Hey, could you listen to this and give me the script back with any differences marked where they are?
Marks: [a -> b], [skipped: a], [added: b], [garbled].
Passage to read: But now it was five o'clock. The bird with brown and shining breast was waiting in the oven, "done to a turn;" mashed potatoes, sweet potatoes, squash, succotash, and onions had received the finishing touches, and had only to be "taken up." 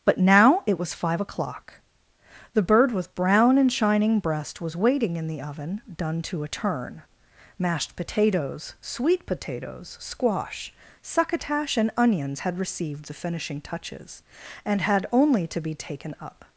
But now it was five o'clock. The bird with brown and shining breast was waiting in the oven, "done to a turn;" mashed potatoes, sweet potatoes, squash, succotash, and onions had received the finishing touches, and had only to be "taken up."